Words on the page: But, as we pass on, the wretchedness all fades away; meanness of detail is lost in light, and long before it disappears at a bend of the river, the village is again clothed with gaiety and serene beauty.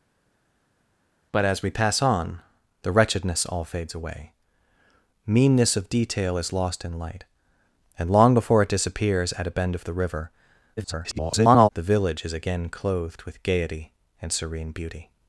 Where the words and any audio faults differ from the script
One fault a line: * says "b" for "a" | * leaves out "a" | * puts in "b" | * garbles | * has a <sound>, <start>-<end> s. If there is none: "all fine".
* garbles